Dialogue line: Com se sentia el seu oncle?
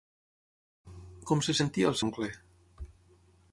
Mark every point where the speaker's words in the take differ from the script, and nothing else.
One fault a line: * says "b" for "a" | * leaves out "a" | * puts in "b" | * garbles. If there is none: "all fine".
* leaves out "seu"